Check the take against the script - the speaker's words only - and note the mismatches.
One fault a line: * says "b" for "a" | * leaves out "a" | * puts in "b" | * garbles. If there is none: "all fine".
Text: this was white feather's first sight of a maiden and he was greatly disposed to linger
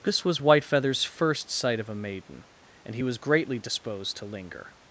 all fine